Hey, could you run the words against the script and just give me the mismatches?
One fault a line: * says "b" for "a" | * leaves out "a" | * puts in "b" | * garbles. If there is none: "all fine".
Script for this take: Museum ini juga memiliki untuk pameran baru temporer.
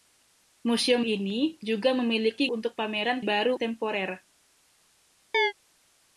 all fine